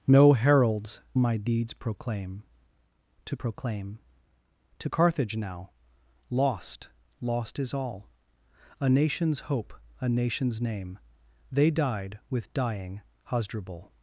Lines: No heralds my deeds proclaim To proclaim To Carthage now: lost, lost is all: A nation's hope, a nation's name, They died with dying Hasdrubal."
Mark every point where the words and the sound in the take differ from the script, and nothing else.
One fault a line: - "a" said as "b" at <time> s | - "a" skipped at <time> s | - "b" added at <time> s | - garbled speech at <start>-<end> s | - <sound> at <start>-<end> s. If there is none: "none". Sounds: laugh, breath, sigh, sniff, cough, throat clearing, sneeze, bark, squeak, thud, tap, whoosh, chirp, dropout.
none